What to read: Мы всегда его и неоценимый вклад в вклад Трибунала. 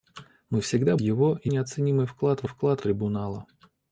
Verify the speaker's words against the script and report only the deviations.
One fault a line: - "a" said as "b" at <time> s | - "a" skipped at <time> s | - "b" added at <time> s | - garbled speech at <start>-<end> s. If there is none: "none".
none